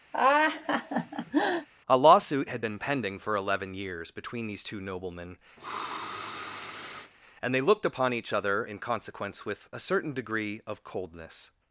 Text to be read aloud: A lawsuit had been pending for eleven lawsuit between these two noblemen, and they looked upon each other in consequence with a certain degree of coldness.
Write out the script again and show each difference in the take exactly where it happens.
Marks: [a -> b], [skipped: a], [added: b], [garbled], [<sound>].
[laugh] A lawsuit had been pending for eleven [lawsuit -> years] between these two noblemen, [sniff] and they looked upon each other in consequence with a certain degree of coldness.